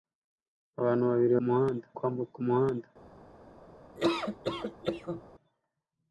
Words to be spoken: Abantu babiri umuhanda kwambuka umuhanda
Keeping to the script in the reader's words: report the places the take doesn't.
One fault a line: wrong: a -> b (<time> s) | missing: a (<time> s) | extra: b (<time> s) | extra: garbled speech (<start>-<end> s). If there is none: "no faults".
no faults